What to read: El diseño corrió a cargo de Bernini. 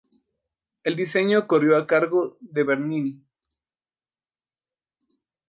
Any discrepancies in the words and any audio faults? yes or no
no